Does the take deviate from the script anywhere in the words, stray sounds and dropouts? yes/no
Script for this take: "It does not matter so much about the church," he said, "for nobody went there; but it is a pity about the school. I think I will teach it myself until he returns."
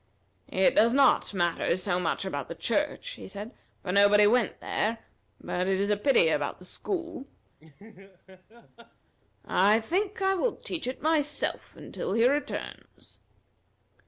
yes